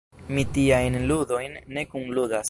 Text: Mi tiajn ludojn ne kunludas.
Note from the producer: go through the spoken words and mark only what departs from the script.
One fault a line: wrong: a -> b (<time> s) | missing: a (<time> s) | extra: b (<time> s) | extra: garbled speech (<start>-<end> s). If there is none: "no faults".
no faults